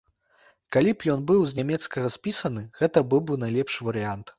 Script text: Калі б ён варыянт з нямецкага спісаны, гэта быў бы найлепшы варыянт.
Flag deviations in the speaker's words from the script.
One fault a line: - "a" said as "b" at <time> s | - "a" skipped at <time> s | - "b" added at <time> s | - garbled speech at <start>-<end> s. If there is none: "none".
- "варыянт" said as "быў" at 1.3 s